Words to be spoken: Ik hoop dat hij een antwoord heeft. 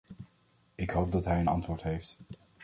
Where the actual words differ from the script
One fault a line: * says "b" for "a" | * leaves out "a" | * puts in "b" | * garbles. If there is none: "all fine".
all fine